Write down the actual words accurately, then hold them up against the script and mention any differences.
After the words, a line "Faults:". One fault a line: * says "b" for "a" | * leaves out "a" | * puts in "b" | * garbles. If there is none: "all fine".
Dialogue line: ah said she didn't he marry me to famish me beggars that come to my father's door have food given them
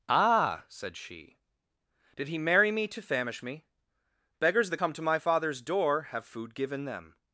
ah said she did he marry me to famish me beggars that come to my father's door have food given them
Faults:
* says "did" for "didn't"